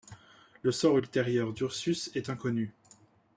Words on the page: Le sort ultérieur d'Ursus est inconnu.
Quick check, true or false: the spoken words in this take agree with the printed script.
true